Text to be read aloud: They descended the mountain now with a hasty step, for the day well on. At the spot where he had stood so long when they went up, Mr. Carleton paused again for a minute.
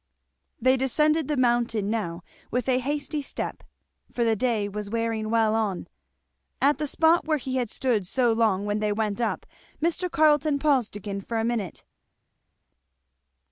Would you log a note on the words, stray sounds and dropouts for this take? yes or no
yes